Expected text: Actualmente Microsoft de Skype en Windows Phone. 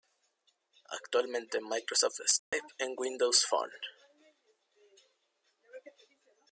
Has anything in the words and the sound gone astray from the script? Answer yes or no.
yes